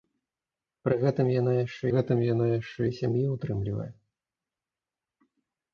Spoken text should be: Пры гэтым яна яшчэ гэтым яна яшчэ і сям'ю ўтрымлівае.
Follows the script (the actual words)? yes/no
yes